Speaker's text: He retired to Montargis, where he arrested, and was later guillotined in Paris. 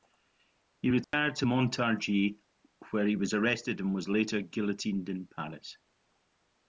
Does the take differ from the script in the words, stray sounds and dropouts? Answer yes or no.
yes